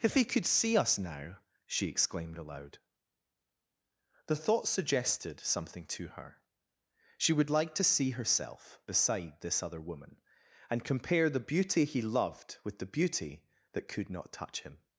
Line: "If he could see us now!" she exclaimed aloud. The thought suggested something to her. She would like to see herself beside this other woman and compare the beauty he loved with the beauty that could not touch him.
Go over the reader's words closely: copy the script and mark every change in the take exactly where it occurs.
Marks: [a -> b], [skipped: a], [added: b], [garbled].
"If he could see us now!" she exclaimed aloud. The thought suggested something to her. She would like to see herself beside this other woman and compare the beauty he loved with the beauty that could not touch him.